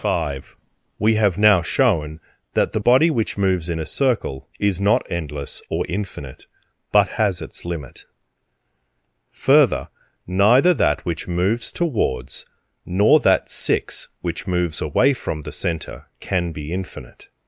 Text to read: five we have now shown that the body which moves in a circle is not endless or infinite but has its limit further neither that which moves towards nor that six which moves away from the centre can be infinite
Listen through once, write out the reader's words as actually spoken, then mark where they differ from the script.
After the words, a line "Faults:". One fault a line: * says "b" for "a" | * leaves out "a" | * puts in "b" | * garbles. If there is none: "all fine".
five we have now shown that the body which moves in a circle is not endless or infinite but has its limit further neither that which moves towards nor that six which moves away from the centre can be infinite
Faults:
all fine